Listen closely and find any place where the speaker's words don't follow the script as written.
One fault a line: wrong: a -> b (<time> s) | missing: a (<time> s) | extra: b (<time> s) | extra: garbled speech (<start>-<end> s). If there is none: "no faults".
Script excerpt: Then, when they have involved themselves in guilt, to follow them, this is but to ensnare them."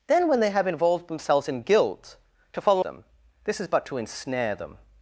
no faults